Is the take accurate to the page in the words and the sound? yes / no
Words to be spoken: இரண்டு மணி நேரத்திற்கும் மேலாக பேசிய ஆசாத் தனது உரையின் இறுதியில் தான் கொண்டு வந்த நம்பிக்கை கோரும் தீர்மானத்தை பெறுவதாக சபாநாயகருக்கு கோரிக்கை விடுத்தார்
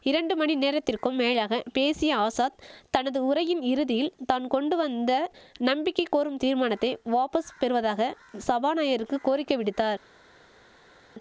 no